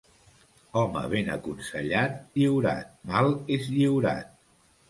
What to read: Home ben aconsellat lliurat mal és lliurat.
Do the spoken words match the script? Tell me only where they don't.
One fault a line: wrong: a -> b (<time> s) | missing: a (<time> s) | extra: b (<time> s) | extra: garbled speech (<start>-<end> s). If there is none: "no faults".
no faults